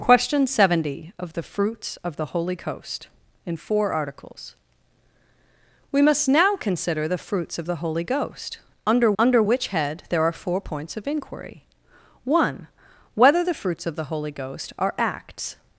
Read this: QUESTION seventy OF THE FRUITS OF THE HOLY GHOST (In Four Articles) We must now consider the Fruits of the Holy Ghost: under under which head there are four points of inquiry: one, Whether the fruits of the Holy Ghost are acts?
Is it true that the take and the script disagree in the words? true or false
false